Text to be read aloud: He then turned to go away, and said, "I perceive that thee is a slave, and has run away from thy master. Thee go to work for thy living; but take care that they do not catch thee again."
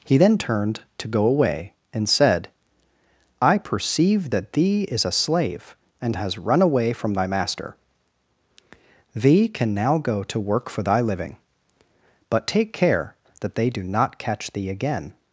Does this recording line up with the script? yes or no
no